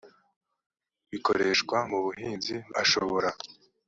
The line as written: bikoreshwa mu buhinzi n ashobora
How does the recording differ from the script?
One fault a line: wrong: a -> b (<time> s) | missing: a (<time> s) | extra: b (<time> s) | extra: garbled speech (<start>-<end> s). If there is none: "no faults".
no faults